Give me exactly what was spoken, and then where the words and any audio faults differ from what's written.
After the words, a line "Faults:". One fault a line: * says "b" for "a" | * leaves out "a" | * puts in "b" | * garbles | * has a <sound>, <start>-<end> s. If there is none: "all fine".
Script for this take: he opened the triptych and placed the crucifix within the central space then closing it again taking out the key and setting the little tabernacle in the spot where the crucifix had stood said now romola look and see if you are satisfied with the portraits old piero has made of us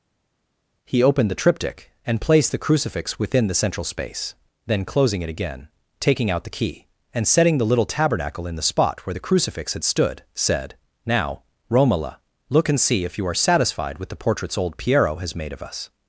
he opened the triptych and placed the crucifix within the central space then closing it again taking out the key and setting the little tabernacle in the spot where the crucifix had stood said now romola look and see if you are satisfied with the portraits old piero has made of us
Faults:
all fine